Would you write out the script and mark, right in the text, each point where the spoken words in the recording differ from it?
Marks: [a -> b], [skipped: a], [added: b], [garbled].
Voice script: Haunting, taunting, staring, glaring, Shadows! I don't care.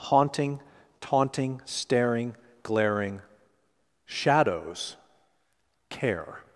Haunting, taunting, staring, glaring, Shadows! [skipped: I don't] care.